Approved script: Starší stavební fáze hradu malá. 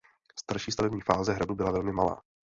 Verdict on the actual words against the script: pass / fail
fail